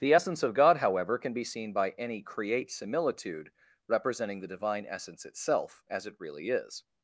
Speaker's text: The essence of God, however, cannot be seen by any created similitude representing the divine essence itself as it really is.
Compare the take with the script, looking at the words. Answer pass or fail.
fail